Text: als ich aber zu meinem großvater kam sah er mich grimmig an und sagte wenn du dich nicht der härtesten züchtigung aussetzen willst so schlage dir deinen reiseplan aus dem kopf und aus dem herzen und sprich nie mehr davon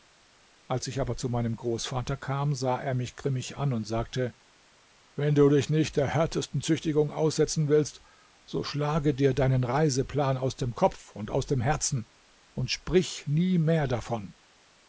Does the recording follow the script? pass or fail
pass